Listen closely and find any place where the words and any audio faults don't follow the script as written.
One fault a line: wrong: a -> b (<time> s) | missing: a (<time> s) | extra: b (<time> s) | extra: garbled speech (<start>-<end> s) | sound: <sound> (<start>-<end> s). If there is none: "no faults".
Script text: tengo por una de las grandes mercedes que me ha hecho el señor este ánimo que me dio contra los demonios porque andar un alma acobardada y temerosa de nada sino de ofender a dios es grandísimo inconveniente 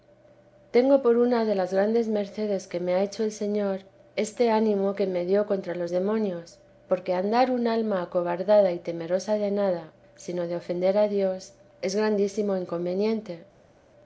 no faults